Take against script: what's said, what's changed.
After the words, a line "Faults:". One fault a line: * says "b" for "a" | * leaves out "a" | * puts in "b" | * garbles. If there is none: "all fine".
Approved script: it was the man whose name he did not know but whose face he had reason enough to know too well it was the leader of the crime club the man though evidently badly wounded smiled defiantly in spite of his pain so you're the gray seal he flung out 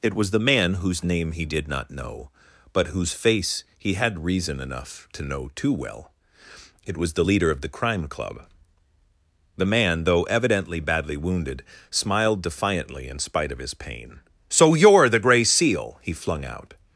it was the man whose name he did not know but whose face he had reason enough to know too well it was the leader of the crime club the man though evidently badly wounded smiled defiantly in spite of his pain so you're the gray seal he flung out
Faults:
all fine